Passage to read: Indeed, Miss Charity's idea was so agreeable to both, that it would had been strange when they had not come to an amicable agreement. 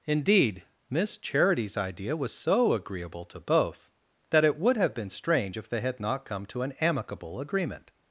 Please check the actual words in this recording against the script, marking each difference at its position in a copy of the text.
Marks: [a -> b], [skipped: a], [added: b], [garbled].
Indeed, Miss Charity's idea was so agreeable to both, that it would [had -> have] been strange [when -> if] they had not come to an amicable agreement.